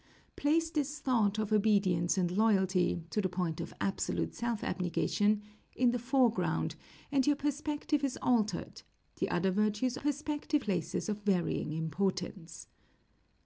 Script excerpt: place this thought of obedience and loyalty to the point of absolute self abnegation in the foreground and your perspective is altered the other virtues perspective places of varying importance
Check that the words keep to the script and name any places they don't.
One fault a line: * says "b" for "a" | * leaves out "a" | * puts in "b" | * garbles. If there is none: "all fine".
all fine